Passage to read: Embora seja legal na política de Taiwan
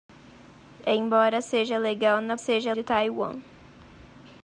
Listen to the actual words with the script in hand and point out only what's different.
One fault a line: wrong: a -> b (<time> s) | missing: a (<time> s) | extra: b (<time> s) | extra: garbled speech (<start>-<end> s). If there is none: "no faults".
wrong: política -> seja (2.4 s)